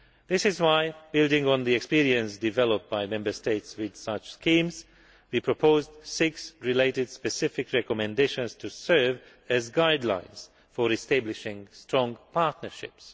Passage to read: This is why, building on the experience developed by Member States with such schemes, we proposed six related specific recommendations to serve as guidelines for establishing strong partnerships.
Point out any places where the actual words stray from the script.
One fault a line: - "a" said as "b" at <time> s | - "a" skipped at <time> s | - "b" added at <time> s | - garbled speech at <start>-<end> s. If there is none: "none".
none